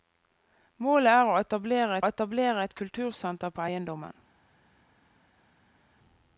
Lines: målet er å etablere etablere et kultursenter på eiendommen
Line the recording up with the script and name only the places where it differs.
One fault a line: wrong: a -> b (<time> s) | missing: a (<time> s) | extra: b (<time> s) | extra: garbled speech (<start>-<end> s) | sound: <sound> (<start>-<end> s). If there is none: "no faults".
no faults